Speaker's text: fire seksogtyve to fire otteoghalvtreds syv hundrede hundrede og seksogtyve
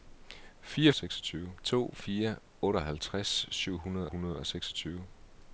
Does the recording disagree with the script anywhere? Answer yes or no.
no